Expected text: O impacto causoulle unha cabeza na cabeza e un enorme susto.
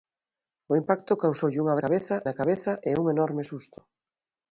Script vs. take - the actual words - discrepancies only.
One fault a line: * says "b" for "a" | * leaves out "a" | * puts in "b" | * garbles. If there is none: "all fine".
all fine